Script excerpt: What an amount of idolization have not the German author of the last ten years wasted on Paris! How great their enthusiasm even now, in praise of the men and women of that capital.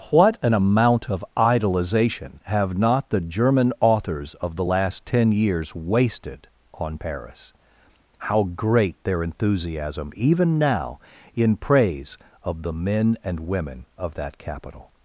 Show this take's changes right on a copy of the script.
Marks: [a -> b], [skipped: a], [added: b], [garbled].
What an amount of idolization have not the German [author -> authors] of the last ten years wasted on Paris! How great their enthusiasm even now, in praise of the men and women of that capital.